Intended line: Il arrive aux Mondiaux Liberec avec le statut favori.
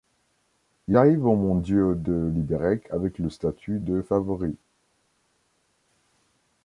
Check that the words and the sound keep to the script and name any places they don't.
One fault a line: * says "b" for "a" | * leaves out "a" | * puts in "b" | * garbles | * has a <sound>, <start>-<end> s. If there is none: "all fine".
* puts in "de"
* puts in "de"